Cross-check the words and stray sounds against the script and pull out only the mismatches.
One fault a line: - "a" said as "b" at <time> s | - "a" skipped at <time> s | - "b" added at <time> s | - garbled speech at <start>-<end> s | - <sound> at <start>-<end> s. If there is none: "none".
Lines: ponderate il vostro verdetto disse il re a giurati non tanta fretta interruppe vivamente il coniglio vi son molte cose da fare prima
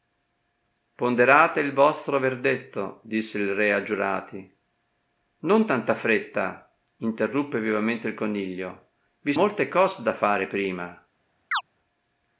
- "son" skipped at 9.3 s
- chirp at 11.5-11.6 s